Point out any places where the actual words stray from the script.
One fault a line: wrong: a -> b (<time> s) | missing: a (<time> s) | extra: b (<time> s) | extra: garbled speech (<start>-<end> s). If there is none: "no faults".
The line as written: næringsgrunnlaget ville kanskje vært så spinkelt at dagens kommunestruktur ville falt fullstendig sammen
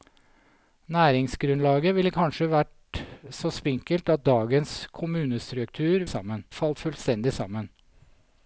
wrong: ville -> sammen (6.1 s)